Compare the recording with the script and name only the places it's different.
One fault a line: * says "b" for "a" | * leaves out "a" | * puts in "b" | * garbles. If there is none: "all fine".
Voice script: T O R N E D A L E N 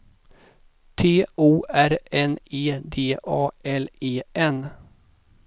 all fine